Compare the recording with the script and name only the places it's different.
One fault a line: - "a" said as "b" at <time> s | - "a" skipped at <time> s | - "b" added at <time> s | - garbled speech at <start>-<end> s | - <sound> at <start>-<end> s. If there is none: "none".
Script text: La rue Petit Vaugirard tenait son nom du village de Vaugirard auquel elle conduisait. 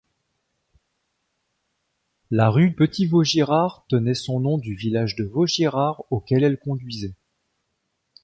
none